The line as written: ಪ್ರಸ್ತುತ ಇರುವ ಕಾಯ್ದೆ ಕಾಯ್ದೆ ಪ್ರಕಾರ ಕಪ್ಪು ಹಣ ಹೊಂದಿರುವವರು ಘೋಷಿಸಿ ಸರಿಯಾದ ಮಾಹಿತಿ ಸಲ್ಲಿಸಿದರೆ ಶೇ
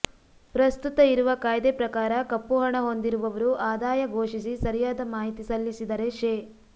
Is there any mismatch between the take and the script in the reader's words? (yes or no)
yes